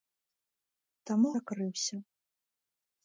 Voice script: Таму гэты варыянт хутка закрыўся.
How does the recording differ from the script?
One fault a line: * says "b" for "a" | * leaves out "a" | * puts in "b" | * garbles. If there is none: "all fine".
* leaves out "гэты варыянт хутка"